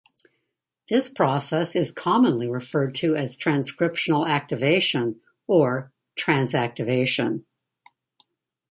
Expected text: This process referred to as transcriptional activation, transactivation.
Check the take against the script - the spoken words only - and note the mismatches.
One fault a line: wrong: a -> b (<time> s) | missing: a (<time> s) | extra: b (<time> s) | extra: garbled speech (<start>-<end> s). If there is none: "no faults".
extra: is commonly (1.8 s)
extra: or (5.5 s)